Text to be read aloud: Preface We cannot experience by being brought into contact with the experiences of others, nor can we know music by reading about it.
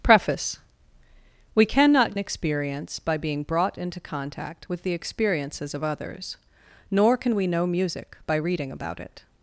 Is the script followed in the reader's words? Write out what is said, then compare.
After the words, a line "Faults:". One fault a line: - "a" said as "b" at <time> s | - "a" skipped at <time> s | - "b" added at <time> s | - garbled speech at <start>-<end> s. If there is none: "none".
Preface We cannot experience by being brought into contact with the experiences of others, nor can we know music by reading about it.
Faults:
none